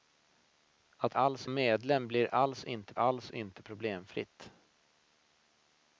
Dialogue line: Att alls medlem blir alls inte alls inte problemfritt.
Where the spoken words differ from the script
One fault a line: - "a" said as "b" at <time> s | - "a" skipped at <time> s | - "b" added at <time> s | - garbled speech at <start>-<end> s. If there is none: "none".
none